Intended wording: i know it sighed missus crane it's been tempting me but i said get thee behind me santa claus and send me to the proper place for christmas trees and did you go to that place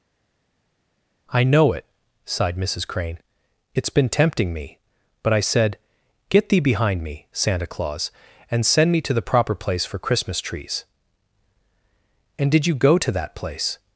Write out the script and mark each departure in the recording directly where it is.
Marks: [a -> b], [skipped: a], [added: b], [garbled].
i know it sighed missus crane it's been tempting me but i said get thee behind me santa claus and send me to the proper place for christmas trees and did you go to that place